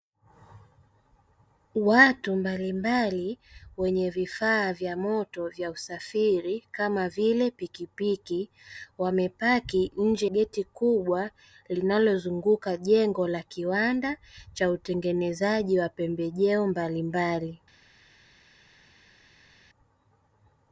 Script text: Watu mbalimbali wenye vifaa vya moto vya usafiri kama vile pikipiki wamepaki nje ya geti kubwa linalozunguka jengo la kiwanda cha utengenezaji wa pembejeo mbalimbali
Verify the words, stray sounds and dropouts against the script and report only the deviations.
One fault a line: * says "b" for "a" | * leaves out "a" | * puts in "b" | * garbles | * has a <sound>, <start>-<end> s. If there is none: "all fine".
* leaves out "ya"